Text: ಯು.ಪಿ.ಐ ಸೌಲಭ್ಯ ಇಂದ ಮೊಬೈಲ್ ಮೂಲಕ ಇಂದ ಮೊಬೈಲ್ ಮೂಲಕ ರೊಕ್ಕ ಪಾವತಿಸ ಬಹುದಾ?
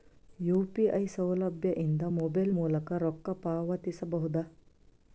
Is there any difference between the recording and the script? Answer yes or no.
yes